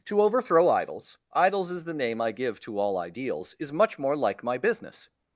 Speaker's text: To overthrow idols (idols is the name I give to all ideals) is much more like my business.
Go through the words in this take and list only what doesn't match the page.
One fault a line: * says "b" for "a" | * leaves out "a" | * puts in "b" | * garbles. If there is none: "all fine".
all fine